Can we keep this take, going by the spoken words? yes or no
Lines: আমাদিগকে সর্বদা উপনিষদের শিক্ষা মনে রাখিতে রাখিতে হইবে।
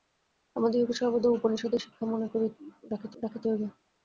yes